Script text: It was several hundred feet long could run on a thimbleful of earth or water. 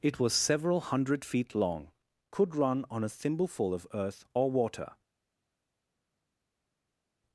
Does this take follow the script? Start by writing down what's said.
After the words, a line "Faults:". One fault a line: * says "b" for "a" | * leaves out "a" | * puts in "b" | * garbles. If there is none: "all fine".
It was several hundred feet long could run on a thimbleful of earth or water.
Faults:
all fine